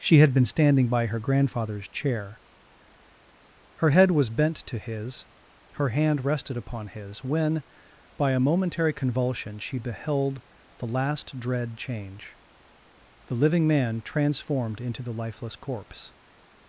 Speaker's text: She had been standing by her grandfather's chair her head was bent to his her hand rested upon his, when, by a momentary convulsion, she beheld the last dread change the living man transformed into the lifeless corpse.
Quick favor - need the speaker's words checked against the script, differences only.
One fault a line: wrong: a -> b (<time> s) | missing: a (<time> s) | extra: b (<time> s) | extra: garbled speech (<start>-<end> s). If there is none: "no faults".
no faults